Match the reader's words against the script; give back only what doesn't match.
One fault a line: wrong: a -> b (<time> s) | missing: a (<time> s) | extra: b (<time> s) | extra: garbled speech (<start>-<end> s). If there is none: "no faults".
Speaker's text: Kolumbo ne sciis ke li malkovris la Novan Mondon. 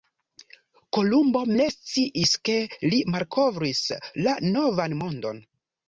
no faults